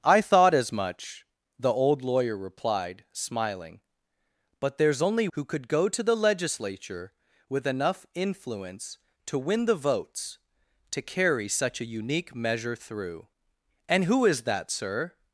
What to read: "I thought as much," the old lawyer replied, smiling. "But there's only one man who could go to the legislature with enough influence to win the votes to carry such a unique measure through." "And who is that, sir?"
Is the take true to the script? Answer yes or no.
no